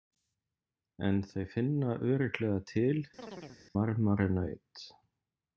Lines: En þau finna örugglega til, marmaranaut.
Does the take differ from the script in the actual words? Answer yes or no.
no